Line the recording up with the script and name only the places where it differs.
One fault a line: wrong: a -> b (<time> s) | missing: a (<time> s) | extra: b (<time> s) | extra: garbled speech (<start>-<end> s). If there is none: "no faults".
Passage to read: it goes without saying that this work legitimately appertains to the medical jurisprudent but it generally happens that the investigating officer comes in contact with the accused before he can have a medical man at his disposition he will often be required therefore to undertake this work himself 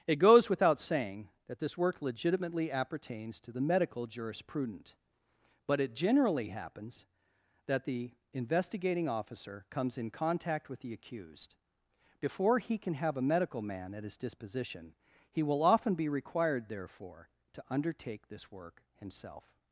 no faults